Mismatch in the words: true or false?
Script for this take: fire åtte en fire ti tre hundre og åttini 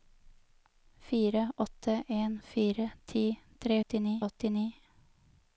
true